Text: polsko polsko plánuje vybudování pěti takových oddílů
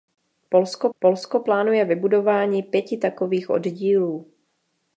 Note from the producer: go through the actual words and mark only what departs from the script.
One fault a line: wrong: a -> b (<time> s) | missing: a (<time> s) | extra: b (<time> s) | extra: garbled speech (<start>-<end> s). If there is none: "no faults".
no faults